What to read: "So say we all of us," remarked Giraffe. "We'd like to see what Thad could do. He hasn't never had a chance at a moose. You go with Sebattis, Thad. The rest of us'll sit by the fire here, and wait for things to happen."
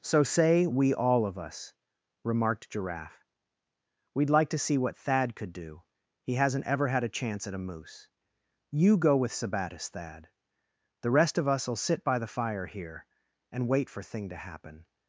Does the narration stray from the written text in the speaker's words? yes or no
yes